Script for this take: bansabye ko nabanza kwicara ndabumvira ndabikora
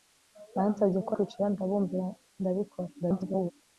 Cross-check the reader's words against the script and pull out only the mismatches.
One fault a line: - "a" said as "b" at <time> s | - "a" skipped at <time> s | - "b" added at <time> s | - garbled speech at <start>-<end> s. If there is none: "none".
- "nabanza" skipped at 1.1 s
- garbled speech at 3.0-3.5 s